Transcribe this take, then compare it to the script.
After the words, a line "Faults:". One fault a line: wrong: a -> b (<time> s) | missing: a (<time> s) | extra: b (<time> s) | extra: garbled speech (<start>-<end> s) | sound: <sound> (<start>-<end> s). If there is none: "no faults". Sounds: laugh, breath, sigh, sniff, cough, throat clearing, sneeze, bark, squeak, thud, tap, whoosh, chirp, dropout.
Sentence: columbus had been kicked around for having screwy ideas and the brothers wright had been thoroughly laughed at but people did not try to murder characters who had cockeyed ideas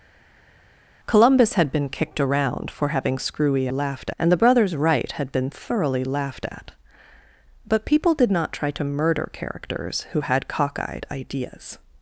columbus had been kicked around for having screwy laughed and the brothers wright had been thoroughly laughed at but people did not try to murder characters who had cockeyed ideas
Faults:
wrong: ideas -> laughed (3.7 s)